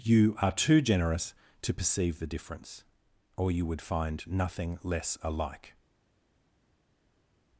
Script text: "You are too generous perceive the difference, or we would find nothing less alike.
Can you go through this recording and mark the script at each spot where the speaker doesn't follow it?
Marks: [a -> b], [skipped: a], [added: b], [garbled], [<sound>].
"You are too generous [added: to] perceive the difference, or [we -> you] would find nothing less alike.